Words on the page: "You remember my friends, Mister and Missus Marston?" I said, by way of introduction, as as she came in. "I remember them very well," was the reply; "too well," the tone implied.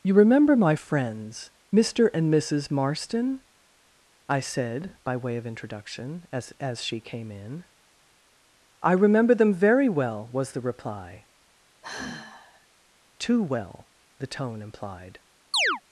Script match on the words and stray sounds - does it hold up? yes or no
no